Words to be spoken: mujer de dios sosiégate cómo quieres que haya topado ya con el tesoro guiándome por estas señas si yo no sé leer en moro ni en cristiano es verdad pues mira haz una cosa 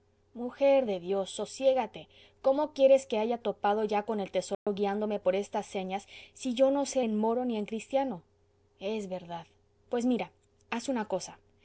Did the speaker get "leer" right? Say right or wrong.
wrong